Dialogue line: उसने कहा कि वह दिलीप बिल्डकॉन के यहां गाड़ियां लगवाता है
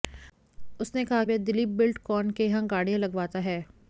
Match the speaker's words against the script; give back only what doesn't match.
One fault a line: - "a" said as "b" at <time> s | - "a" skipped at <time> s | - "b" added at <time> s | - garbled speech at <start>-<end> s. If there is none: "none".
- "कि" skipped at 1.2 s